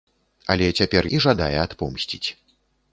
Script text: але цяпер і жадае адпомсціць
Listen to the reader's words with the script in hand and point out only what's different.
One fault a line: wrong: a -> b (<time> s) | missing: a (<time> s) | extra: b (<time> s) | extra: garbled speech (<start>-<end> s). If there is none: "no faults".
no faults